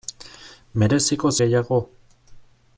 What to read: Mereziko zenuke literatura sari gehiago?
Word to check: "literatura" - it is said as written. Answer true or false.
false